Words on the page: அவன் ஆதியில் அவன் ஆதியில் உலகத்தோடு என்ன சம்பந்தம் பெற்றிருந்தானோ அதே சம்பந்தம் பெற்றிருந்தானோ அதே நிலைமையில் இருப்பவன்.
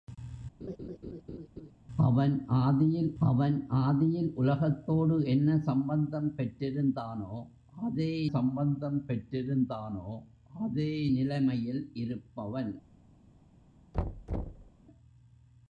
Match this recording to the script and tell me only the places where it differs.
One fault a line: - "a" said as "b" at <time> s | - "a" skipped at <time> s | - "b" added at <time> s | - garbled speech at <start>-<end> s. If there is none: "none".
none